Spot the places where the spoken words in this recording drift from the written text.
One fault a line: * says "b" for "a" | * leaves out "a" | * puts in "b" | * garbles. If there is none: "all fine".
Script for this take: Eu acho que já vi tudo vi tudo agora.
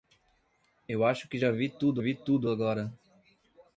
all fine